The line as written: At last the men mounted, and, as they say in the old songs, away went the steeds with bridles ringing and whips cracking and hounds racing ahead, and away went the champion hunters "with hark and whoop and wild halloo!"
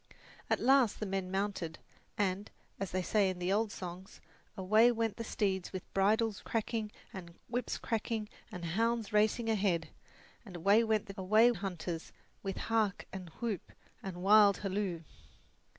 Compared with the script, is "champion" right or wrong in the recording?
wrong